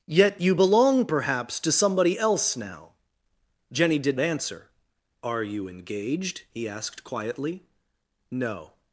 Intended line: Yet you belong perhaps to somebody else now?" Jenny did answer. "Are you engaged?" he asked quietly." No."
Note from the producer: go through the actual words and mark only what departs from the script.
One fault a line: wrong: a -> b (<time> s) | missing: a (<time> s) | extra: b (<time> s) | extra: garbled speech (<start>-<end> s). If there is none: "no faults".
no faults